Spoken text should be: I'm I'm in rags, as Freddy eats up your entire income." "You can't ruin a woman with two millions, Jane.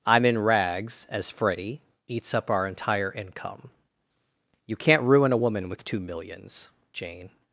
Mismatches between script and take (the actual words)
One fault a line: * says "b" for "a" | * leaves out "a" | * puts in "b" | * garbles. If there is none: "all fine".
* leaves out "I'm"
* says "our" for "your"